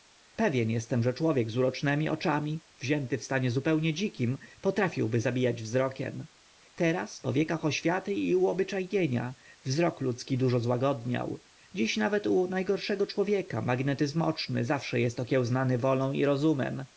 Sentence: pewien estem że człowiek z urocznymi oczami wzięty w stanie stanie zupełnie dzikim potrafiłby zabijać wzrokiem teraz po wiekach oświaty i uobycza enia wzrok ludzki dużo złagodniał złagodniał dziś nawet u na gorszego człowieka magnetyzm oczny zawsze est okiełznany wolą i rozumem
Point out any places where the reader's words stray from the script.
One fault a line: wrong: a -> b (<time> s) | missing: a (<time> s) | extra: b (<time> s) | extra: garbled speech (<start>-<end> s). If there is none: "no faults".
missing: stanie (3.5 s)
missing: złagodniał (11.4 s)